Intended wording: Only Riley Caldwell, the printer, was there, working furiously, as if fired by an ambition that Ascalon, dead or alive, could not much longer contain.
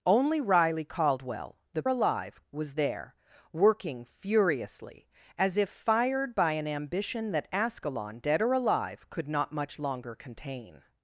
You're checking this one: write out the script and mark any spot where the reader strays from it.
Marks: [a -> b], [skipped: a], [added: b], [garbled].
Only Riley Caldwell, the [printer, -> alive] was there, working furiously, as if fired by an ambition that Ascalon, dead or alive, could not much longer contain.